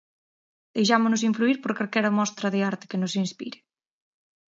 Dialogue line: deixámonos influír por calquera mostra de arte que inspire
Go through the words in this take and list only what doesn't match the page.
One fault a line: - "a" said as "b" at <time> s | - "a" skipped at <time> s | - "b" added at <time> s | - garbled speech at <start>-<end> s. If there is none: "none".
- "nos" added at 3.0 s